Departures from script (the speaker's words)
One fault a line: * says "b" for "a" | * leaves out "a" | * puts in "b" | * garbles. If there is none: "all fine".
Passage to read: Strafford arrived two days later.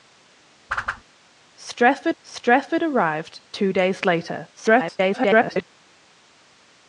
* puts in "strafford"
* garbles